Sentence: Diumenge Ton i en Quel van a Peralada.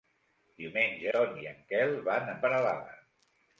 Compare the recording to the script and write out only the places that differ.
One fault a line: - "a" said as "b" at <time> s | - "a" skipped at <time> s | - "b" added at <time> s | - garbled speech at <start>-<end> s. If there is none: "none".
none